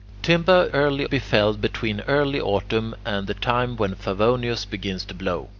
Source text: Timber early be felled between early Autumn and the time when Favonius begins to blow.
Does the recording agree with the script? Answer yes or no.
yes